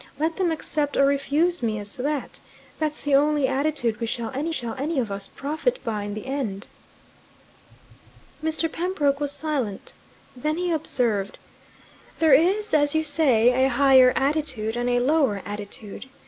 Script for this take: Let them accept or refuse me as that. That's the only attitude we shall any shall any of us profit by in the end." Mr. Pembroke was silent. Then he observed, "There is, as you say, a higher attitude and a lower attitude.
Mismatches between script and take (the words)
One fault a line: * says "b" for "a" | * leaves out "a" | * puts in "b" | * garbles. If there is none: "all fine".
all fine